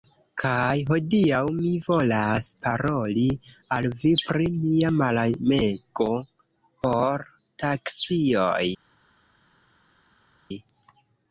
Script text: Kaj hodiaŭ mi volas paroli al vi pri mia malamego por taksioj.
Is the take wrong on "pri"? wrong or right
right